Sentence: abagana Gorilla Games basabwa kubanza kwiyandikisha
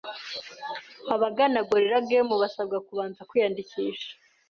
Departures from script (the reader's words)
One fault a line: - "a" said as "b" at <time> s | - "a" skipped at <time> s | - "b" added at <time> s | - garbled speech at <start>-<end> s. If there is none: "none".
none